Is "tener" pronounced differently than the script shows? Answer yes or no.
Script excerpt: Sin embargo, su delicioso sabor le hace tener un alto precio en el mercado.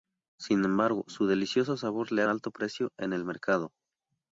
yes